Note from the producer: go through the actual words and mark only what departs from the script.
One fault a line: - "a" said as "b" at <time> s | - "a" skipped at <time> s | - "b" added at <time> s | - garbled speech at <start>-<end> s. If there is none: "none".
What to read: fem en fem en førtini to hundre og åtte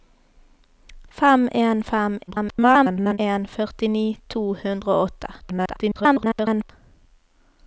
- garbled speech at 2.3-3.2 s
- garbled speech at 5.4-6.7 s